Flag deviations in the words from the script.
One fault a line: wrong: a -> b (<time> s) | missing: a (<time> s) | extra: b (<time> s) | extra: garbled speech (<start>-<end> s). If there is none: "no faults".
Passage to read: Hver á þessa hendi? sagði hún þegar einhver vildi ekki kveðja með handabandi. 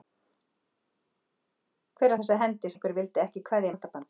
missing: sagði hún þegar (2.7 s)
missing: með (3.7 s)